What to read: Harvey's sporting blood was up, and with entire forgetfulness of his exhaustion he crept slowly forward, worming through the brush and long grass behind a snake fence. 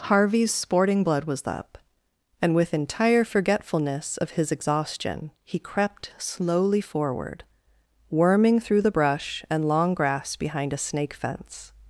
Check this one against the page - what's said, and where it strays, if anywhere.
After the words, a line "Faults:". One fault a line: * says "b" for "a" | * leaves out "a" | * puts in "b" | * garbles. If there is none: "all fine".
Harvey's sporting blood was up, and with entire forgetfulness of his exhaustion he crept slowly forward, worming through the brush and long grass behind a snake fence.
Faults:
all fine